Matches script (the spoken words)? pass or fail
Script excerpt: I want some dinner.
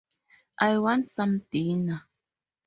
pass